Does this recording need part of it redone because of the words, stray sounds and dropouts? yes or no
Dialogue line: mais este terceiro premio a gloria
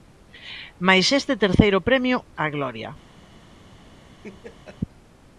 yes